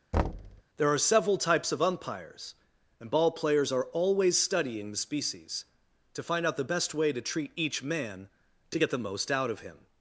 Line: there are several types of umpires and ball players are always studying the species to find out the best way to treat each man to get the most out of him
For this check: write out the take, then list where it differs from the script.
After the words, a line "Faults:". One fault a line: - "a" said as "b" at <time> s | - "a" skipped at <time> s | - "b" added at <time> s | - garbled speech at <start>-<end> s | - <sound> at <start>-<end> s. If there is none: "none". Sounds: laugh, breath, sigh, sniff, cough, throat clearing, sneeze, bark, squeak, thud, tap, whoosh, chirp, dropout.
there are several types of umpires and ball players are always studying the species to find out the best way to treat each man to get the most out of him
Faults:
- thud at 0.1-0.6 s